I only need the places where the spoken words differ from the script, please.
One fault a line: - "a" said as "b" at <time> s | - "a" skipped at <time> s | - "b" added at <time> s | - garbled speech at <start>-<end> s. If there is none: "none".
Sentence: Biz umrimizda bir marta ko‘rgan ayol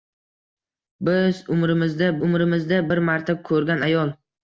- "umrimizda" added at 2.3 s